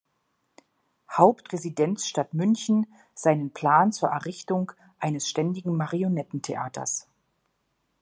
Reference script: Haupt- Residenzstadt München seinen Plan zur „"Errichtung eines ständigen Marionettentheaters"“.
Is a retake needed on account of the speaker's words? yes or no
no